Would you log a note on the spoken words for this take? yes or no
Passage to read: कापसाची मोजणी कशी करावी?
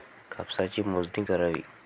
yes